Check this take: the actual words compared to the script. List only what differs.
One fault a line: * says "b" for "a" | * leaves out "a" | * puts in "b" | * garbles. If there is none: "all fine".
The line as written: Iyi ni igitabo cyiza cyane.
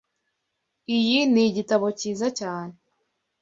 all fine